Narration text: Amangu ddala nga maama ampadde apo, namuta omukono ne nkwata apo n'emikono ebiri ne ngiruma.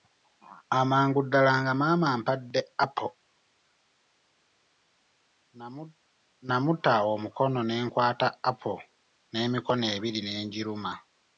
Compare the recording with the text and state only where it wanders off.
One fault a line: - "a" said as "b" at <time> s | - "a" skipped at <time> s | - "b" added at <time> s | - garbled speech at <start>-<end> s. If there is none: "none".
none